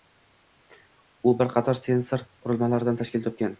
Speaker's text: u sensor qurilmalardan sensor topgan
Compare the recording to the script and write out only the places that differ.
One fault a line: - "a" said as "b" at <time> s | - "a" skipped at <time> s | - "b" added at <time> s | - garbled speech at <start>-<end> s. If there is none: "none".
- "bir qator" added at 1.4 s
- "sensor" said as "tashkil" at 3.1 s